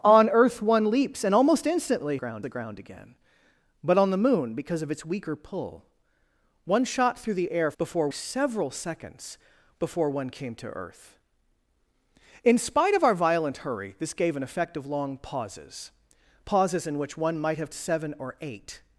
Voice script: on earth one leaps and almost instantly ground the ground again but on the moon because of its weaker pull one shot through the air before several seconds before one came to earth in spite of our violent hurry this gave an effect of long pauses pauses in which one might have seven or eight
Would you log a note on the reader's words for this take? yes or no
no